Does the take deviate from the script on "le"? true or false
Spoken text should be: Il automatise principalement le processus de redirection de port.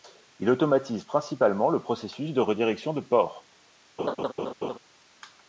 false